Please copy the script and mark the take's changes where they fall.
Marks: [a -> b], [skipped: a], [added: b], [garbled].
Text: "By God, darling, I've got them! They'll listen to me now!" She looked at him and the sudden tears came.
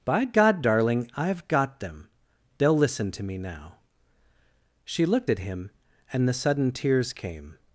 "By God, darling, I've got them! They'll listen to me now!" She looked at him and the sudden tears came.